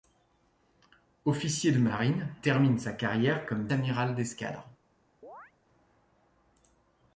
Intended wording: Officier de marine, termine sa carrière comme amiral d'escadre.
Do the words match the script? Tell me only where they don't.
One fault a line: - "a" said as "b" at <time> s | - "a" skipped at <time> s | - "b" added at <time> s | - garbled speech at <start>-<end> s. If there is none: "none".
none